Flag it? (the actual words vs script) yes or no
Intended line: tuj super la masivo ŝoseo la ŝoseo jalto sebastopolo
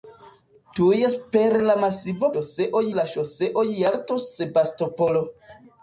no